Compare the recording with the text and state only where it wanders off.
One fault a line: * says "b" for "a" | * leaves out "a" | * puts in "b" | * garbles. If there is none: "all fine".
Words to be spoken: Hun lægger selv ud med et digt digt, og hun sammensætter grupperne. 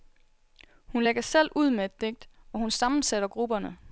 * leaves out "digt"